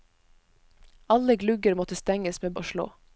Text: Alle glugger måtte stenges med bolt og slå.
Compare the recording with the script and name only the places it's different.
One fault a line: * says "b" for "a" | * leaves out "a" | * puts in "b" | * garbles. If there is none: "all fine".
* leaves out "bolt"